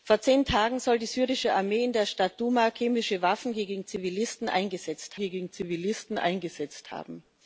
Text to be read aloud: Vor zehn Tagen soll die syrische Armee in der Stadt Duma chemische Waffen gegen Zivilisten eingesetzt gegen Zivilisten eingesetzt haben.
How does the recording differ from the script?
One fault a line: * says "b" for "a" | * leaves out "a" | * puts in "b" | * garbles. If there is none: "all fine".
all fine